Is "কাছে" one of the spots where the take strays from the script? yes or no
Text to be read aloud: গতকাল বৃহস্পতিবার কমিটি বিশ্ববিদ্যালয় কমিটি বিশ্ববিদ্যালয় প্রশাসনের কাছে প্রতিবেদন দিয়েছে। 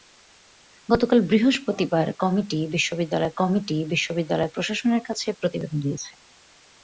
no